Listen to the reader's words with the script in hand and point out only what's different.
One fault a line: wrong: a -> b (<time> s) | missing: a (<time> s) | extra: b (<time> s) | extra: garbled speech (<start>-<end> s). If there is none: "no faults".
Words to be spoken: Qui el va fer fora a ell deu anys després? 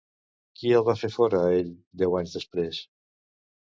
no faults